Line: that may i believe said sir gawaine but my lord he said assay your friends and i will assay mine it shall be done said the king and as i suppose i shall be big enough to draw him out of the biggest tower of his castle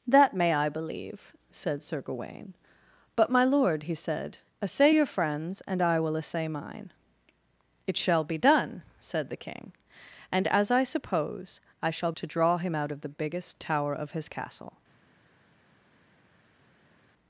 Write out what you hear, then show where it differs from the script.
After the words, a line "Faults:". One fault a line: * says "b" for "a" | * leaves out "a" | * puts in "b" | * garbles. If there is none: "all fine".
that may i believe said sir gawaine but my lord he said assay your friends and i will assay mine it shall be done said the king and as i suppose i shall to draw him out of the biggest tower of his castle
Faults:
* leaves out "be big enough"